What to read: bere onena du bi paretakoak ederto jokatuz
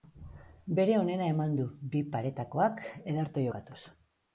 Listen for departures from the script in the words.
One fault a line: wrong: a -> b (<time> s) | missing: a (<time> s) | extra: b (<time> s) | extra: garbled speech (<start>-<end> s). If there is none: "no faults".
extra: eman (1.4 s)